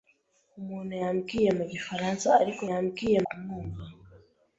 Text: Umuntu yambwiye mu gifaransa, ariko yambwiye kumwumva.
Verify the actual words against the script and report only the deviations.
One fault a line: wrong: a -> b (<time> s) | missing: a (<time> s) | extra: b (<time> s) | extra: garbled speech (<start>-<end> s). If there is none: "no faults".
no faults